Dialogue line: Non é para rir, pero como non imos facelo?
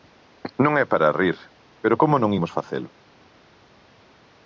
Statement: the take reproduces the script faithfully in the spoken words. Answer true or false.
true